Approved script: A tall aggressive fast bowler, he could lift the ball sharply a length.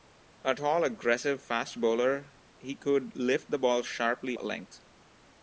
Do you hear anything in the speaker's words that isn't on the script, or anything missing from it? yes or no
no